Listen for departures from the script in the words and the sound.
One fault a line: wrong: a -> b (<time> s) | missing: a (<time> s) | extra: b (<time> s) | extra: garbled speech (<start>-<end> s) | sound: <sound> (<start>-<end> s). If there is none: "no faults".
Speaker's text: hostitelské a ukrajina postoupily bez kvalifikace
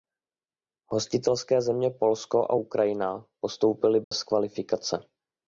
extra: země polsko (1.6 s)
sound: dropout (4.0-4.1 s)